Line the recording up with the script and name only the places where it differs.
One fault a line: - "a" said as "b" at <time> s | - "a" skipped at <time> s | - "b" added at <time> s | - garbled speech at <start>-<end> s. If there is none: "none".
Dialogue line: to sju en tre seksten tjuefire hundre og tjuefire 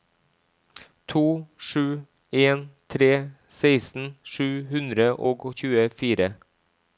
- "tjuefire" said as "sju" at 4.3 s